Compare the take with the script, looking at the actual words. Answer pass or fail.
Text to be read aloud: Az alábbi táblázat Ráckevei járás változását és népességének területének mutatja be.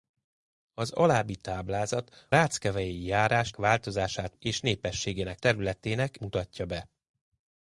pass